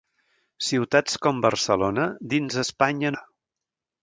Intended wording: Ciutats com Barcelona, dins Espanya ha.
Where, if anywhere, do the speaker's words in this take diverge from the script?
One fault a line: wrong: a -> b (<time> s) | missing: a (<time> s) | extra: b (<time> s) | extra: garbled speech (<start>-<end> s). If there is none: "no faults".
no faults